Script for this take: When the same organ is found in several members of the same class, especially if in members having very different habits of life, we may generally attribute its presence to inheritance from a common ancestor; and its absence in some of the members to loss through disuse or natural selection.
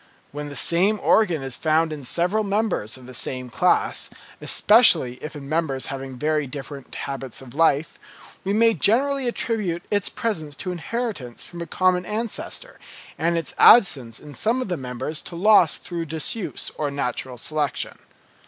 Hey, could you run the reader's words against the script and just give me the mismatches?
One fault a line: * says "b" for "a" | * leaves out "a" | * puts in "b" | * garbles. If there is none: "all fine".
all fine